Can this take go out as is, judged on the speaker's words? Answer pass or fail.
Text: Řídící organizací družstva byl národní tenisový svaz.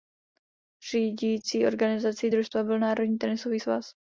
pass